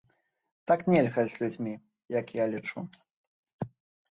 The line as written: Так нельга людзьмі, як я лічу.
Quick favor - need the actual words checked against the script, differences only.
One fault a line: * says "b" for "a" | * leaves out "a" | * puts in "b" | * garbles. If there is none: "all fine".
* puts in "з"